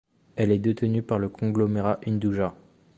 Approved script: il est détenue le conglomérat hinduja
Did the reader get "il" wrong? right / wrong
wrong